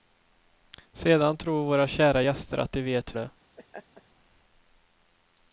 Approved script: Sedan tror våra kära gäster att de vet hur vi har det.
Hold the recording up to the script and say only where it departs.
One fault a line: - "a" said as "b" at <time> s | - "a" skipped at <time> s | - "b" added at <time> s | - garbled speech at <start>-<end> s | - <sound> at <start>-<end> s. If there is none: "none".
- "hur vi har" skipped at 3.2 s
- laugh at 3.6-4.0 s